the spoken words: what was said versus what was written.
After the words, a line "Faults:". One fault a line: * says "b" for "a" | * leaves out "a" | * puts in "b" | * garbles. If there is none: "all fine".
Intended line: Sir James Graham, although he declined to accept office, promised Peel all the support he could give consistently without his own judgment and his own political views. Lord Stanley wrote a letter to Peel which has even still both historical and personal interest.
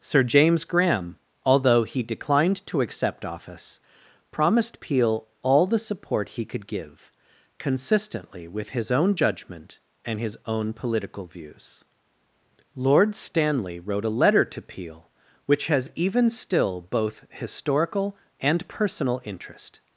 Sir James Graham, although he declined to accept office, promised Peel all the support he could give consistently with his own judgment and his own political views. Lord Stanley wrote a letter to Peel which has even still both historical and personal interest.
Faults:
* says "with" for "without"